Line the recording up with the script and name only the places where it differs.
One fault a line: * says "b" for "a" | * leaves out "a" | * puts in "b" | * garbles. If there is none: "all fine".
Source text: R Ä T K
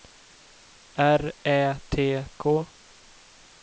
all fine